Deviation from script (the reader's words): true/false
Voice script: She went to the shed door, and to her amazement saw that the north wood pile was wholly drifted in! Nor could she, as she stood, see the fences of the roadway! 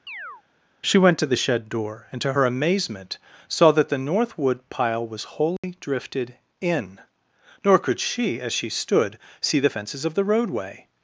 false